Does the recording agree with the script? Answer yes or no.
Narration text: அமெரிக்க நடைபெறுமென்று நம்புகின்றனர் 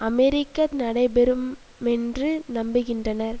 yes